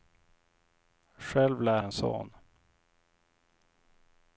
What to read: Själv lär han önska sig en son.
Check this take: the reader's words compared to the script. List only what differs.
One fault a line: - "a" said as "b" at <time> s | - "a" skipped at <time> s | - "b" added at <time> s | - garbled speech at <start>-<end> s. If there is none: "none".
- "han önska sig" skipped at 1.8 s